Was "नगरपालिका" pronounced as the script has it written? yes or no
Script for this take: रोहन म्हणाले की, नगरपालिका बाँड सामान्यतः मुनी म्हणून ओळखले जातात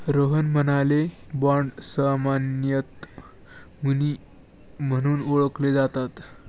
no